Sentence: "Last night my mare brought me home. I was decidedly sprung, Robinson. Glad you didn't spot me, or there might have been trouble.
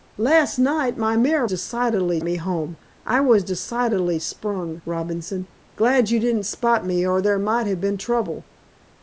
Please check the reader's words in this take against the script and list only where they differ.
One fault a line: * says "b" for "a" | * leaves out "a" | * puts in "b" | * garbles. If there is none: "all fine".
* says "decidedly" for "brought"